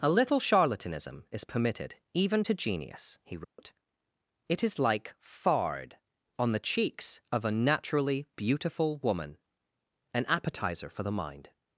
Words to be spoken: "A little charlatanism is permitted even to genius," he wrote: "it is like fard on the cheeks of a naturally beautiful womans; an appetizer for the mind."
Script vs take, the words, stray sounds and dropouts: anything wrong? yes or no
yes